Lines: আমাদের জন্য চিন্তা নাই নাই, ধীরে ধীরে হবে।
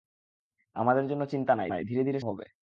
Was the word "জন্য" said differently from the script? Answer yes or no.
no